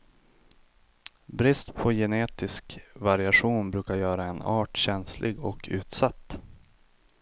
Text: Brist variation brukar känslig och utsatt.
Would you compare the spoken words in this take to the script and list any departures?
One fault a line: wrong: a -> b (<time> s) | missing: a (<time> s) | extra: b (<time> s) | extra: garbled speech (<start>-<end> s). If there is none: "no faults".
extra: på genetisk (1.7 s)
extra: göra en art (4.0 s)